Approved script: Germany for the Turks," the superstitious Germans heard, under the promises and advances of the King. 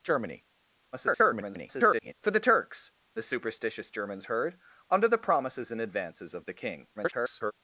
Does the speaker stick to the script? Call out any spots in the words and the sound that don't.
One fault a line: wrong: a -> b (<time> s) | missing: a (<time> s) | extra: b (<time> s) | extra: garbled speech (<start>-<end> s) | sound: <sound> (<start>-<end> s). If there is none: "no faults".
extra: garbled speech (0.9-2.1 s)
extra: garbled speech (7.0-7.5 s)